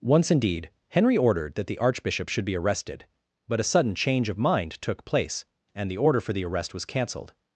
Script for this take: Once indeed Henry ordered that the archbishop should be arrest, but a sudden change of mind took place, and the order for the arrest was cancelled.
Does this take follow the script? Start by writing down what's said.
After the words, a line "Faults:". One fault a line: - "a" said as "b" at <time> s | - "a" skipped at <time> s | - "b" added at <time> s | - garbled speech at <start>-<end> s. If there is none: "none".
Once indeed Henry ordered that the archbishop should be arrested, but a sudden change of mind took place, and the order for the arrest was cancelled.
Faults:
- "arrest" said as "arrested" at 2.6 s